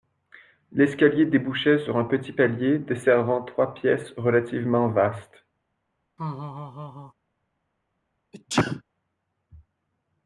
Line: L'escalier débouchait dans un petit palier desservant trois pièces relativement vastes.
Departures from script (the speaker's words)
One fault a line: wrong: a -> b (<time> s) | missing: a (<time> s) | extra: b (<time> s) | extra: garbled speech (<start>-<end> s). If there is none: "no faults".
wrong: dans -> sur (1.8 s)